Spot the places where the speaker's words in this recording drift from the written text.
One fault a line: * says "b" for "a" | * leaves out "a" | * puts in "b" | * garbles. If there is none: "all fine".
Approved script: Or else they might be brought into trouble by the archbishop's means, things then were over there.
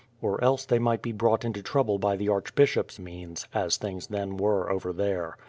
* puts in "as"